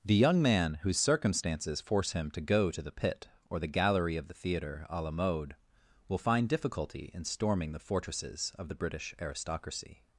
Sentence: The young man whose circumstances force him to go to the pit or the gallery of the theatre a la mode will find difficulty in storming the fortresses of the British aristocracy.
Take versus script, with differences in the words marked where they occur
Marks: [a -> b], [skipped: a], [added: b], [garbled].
The young man whose circumstances force him to go to the pit or the gallery of the theatre a la mode will find difficulty in storming the fortresses of the British aristocracy.